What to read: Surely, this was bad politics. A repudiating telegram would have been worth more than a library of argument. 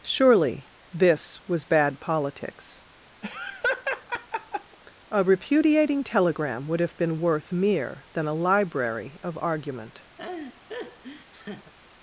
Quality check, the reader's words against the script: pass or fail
fail